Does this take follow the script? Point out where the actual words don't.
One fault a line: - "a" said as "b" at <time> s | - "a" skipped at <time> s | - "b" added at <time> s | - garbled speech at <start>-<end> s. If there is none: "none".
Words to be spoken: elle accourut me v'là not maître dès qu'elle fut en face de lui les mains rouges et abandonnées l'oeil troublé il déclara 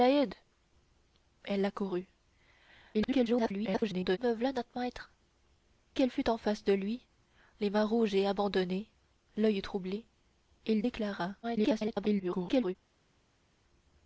- garbled speech at 2.9-4.2 s
- "dès" skipped at 5.1 s
- garbled speech at 11.4-12.8 s